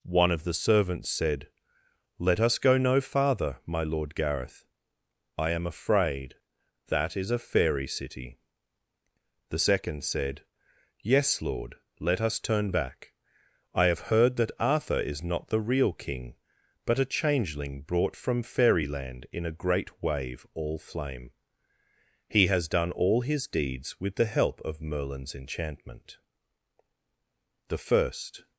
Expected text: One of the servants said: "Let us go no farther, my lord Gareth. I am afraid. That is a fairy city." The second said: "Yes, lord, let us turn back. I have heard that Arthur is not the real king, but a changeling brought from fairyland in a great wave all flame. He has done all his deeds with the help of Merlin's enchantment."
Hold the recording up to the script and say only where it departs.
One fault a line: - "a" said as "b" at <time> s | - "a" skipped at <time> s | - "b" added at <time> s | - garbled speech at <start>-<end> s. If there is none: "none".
- "The first" added at 27.7 s